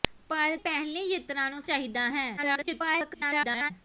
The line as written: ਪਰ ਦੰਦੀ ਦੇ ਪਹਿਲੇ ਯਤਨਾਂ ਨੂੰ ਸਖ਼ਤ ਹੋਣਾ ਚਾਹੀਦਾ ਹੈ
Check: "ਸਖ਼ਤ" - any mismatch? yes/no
yes